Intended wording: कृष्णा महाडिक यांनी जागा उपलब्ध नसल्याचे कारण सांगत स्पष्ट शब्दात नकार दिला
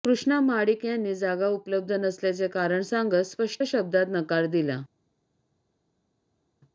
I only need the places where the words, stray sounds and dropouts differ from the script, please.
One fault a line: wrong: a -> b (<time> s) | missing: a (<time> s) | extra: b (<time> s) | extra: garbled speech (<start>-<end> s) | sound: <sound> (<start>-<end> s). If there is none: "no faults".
no faults